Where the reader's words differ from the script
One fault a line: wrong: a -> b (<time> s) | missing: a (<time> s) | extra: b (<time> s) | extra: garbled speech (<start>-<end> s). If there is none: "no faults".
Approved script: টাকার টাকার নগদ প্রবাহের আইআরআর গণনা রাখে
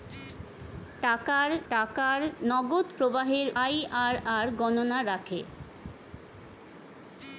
no faults